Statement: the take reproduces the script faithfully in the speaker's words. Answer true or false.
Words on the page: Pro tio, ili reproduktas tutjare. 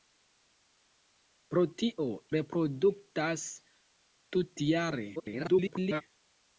false